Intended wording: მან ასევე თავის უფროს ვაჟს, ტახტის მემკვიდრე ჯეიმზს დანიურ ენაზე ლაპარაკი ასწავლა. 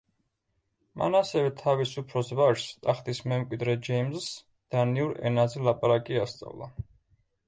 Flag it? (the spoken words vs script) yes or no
no